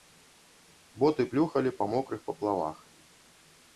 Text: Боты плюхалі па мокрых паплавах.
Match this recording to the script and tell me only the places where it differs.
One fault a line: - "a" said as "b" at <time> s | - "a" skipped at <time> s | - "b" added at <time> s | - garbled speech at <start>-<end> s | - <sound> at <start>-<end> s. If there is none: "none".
none